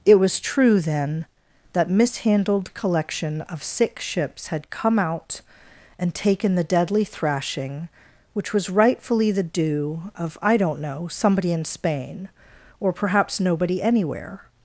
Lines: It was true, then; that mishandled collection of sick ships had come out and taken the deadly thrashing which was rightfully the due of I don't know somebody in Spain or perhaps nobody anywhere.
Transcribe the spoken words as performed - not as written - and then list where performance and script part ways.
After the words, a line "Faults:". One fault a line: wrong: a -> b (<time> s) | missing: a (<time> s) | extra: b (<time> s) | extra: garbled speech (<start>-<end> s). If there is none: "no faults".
It was true, then; that mishandled collection of sick ships had come out and taken the deadly thrashing which was rightfully the due of I don't know somebody in Spain or perhaps nobody anywhere.
Faults:
no faults